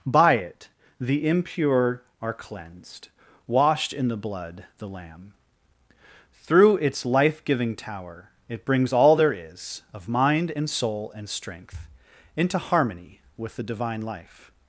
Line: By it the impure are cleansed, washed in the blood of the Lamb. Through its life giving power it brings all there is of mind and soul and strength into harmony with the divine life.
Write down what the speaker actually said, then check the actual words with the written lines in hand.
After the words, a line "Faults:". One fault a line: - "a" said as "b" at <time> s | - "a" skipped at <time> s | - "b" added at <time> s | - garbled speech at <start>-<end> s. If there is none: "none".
By it the impure are cleansed, washed in the blood the Lamb. Through its life giving tower it brings all there is of mind and soul and strength into harmony with the divine life.
Faults:
- "of" skipped at 4.7 s
- "power" said as "tower" at 7.8 s